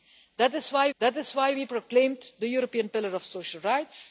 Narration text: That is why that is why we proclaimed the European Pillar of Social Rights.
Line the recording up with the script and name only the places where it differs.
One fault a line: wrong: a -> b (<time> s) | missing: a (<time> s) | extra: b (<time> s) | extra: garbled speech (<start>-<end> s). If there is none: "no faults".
no faults